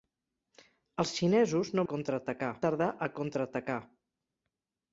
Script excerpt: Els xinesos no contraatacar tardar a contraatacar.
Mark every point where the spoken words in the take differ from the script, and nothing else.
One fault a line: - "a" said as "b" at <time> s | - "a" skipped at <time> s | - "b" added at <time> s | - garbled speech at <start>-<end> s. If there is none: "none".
none